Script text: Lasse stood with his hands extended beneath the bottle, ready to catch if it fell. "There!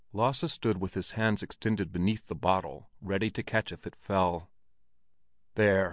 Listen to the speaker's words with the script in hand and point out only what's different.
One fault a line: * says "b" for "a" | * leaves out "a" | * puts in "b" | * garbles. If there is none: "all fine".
all fine